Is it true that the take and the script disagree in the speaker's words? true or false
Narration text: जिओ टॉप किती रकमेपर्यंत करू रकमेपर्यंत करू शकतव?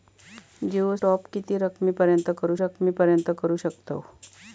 false